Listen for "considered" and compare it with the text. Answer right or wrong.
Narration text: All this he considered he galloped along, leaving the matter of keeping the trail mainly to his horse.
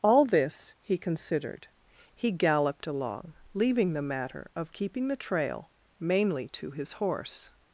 right